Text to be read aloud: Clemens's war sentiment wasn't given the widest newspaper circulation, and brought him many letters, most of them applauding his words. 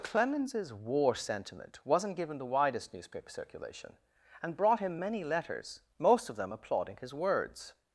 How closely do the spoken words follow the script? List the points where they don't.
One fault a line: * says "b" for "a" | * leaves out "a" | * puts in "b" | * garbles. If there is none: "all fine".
all fine